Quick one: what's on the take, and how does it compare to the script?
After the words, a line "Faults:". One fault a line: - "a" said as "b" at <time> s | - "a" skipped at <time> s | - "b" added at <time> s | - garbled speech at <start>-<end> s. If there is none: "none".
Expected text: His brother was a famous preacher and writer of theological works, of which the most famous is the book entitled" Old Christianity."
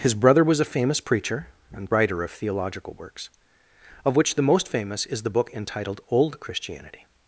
His brother was a famous preacher and writer of theological works, of which the most famous is the book entitled" Old Christianity."
Faults:
none